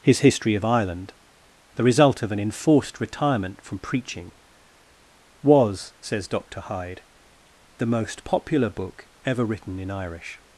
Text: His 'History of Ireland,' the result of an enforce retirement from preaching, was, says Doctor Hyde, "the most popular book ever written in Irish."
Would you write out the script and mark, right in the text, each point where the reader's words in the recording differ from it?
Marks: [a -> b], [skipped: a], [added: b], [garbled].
His 'History of Ireland,' the result of an [enforce -> enforced] retirement from preaching, was, says Doctor Hyde, "the most popular book ever written in Irish."